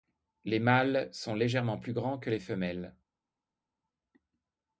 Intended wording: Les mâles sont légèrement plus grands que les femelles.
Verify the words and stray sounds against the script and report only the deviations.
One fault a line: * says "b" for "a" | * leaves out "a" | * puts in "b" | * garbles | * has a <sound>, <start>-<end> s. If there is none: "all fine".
all fine